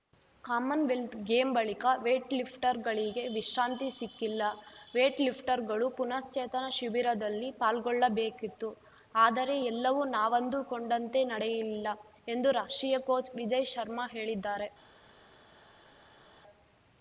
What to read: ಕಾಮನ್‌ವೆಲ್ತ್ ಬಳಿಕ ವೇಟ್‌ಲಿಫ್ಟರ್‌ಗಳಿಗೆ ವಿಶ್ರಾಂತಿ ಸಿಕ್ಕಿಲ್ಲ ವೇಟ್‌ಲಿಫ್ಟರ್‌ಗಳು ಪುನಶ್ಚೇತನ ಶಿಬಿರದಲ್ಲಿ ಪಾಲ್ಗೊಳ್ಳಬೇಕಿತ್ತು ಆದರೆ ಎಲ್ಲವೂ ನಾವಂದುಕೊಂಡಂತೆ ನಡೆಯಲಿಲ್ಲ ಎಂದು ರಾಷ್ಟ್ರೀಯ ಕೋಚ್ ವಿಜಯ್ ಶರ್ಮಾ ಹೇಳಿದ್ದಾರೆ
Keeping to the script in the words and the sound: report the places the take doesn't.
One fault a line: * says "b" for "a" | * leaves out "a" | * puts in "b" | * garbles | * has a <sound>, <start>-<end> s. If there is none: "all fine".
* puts in "ಗೇಮ್"